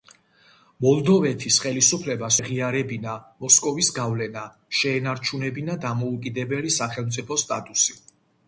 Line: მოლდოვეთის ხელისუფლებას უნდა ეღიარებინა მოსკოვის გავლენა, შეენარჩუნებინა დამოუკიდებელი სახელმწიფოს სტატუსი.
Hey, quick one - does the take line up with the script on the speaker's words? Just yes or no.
no